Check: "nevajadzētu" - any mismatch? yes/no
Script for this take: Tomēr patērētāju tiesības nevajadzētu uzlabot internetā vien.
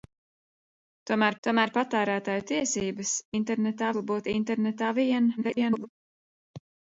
yes